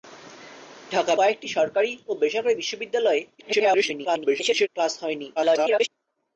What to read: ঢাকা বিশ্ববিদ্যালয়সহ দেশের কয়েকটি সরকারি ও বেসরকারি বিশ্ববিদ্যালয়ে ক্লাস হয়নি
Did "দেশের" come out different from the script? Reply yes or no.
yes